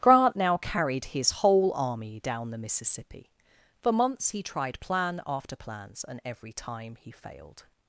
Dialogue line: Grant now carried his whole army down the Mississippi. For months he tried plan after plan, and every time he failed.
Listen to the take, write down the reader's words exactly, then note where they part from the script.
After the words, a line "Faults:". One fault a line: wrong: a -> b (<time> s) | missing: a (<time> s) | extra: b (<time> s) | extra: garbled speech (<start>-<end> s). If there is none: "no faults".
Grant now carried his whole army down the Mississippi. For months he tried plan after plans, and every time he failed.
Faults:
wrong: plan -> plans (5.6 s)